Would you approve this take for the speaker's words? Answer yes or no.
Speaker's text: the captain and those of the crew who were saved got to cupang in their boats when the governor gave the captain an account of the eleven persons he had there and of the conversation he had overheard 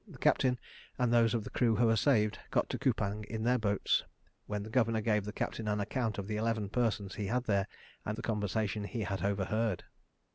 no